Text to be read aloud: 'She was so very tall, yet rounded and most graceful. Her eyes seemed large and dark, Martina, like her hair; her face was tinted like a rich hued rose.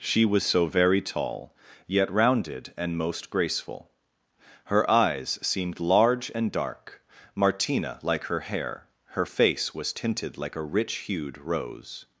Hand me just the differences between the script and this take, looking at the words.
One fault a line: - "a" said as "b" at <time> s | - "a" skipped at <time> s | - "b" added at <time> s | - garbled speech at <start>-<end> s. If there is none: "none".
none